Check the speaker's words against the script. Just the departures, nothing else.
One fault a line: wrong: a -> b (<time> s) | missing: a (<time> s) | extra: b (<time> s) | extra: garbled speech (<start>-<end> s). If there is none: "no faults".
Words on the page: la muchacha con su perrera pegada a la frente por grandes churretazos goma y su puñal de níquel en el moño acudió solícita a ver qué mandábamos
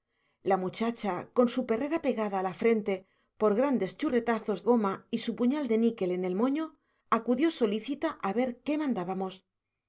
no faults